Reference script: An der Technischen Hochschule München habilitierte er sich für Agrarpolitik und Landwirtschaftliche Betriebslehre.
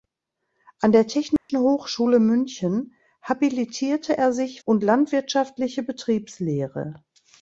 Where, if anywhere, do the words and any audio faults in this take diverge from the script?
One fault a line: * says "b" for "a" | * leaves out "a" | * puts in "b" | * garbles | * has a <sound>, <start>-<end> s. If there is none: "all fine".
* has a dropout, 1.4-1.5 s
* leaves out "für Agrarpolitik"